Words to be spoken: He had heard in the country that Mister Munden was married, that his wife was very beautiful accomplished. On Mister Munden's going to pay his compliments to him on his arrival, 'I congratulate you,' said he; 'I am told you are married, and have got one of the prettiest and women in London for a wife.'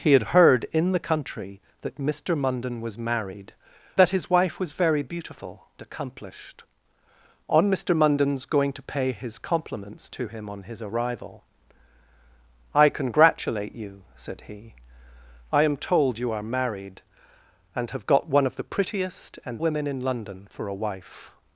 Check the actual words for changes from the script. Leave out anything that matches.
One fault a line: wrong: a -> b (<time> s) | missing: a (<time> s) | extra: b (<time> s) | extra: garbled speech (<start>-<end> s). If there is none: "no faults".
no faults